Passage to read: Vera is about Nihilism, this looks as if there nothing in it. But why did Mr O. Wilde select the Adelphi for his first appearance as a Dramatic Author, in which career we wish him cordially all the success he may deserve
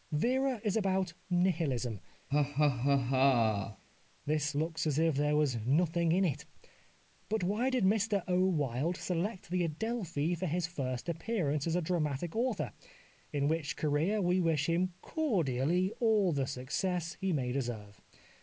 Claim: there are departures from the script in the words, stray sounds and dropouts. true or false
true